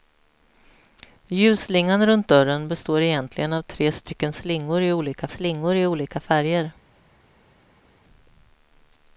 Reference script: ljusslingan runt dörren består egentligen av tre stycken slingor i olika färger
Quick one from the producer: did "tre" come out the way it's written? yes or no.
yes